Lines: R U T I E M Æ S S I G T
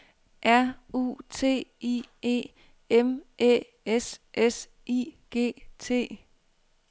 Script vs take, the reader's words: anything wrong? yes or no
no